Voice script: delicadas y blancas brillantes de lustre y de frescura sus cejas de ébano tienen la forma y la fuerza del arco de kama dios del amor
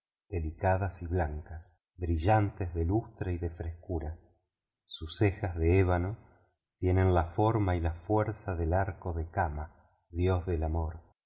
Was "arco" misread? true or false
false